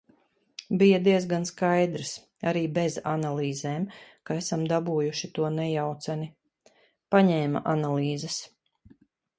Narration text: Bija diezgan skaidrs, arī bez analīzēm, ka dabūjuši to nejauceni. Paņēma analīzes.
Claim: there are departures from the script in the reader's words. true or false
true